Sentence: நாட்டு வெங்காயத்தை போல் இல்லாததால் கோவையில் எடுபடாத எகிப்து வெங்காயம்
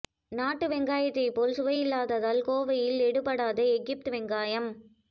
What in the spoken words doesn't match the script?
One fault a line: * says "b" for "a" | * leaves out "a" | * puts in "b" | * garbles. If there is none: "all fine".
* puts in "சுவை"